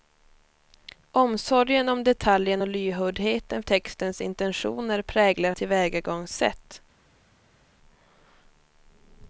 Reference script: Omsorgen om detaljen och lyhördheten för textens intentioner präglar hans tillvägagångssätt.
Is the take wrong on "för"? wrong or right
wrong